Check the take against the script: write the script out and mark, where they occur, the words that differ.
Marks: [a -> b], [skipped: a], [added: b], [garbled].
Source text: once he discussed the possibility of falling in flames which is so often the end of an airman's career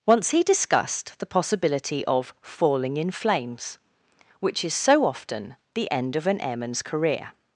once he discussed the possibility of falling in flames which is so often the end of an airman's career